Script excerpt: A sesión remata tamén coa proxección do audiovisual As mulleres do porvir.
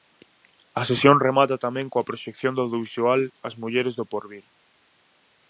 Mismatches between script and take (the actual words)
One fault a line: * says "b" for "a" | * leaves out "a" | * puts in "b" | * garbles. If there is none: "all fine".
all fine